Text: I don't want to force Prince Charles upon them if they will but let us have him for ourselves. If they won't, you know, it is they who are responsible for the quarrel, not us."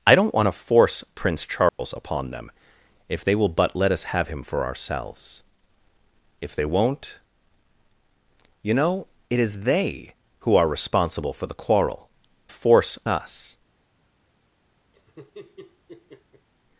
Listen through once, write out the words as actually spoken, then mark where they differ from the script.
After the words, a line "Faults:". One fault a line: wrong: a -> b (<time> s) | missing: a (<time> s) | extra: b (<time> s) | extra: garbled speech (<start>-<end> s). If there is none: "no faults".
I don't want to force Prince Charles upon them if they will but let us have him for ourselves. If they won't, you know, it is they who are responsible for the quarrel, force us."
Faults:
wrong: not -> force (12.5 s)